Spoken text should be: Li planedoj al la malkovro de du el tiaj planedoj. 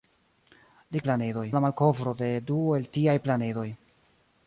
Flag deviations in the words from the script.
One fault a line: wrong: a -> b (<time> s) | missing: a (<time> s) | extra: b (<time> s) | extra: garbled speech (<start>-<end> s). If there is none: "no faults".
no faults